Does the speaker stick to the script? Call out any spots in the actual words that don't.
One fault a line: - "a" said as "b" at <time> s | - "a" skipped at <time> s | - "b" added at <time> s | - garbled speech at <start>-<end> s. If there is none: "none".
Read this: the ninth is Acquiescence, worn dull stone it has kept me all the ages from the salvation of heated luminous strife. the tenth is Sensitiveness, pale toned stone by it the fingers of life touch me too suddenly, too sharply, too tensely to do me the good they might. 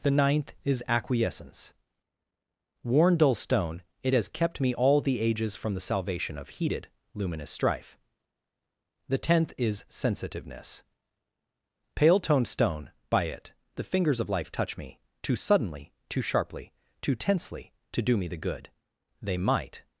none